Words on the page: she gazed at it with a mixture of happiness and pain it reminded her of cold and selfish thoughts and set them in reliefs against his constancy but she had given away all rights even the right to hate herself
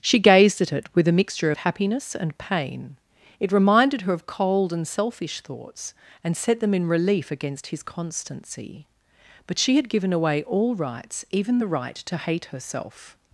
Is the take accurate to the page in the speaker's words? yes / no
no